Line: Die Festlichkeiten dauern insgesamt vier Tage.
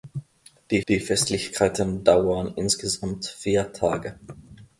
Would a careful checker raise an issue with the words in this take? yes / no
yes